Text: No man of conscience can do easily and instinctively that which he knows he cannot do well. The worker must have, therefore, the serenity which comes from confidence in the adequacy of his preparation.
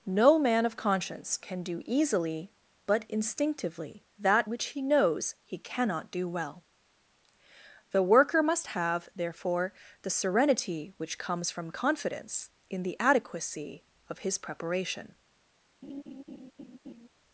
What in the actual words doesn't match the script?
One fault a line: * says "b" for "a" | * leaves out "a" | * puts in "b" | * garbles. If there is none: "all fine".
* says "but" for "and"